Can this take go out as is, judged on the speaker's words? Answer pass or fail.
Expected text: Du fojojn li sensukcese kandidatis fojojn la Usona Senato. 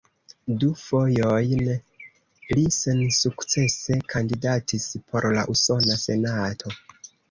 fail